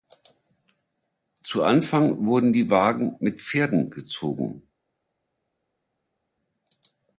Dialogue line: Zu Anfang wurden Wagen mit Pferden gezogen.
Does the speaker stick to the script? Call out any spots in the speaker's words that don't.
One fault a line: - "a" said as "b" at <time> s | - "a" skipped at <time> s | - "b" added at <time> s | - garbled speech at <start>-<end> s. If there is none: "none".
- "die" added at 2.5 s